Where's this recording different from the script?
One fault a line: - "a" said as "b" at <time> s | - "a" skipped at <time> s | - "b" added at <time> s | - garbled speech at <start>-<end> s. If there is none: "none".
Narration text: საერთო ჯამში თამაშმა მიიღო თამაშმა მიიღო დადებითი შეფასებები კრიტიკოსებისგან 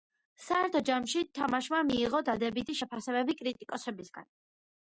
- "თამაშმა მიიღო" skipped at 2.2 s